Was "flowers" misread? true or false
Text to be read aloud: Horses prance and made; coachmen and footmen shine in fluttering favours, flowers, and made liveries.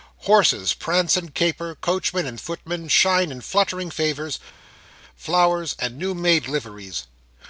false